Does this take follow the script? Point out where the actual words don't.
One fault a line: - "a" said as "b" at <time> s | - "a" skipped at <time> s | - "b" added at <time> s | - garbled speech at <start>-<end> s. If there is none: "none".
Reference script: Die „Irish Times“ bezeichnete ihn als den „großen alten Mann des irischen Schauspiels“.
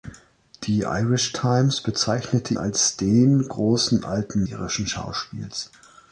- "ihn" skipped at 2.5 s
- "Mann des" skipped at 4.4 s